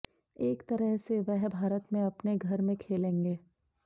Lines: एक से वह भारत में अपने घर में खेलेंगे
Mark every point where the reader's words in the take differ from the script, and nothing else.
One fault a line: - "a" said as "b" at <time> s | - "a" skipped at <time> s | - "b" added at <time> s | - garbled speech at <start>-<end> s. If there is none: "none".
- "तरह" added at 0.7 s